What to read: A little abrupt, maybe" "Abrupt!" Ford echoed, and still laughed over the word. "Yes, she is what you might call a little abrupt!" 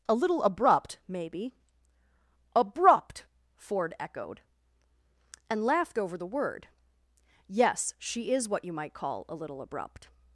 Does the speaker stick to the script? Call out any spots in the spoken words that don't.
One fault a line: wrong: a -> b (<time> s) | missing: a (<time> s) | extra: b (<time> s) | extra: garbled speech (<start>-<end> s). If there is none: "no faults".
missing: still (5.6 s)